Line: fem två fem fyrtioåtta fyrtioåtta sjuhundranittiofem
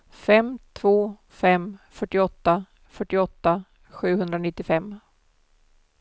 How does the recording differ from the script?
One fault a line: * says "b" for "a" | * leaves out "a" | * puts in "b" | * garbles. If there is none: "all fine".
all fine